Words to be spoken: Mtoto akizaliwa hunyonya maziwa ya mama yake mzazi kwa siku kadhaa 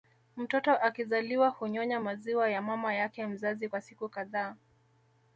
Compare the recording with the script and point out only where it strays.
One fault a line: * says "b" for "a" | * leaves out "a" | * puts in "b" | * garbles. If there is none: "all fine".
all fine